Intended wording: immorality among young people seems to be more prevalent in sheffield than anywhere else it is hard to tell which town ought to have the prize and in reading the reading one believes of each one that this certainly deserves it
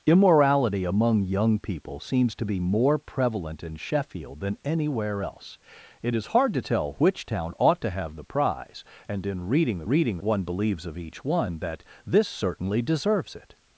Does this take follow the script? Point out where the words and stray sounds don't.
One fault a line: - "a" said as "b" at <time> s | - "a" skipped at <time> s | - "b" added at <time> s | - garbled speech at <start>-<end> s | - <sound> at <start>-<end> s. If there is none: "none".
none